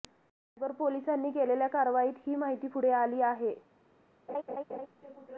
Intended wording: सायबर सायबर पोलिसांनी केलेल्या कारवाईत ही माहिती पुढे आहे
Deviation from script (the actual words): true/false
true